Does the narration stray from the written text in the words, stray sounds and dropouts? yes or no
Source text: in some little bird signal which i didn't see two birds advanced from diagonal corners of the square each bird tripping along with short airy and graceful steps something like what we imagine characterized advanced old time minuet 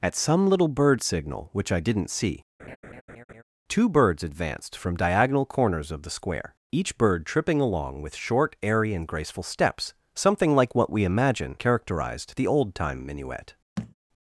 yes